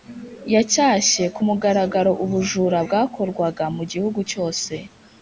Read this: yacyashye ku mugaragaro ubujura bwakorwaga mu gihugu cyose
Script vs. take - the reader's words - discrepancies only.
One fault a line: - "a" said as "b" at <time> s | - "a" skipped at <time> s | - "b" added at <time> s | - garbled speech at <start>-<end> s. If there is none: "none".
none